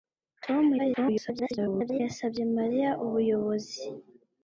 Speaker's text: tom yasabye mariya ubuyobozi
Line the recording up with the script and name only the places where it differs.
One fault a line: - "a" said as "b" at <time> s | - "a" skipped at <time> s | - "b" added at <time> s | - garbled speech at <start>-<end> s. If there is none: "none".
- garbled speech at 0.8-2.0 s